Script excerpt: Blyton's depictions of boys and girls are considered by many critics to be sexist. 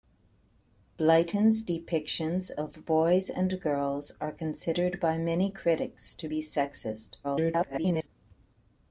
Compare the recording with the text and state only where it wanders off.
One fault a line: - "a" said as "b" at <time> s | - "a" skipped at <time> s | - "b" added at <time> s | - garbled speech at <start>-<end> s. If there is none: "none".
- garbled speech at 7.2-8.1 s